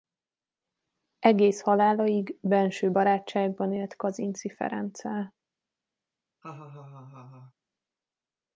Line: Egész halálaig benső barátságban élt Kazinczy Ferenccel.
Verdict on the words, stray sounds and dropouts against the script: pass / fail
fail